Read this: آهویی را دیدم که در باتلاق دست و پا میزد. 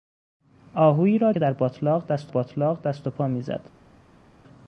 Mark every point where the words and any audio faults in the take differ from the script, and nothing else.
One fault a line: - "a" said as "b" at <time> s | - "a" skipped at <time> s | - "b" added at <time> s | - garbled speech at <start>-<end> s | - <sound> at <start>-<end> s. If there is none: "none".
- "دیدم" skipped at 1.3 s
- "باتلاق دست" added at 2.3 s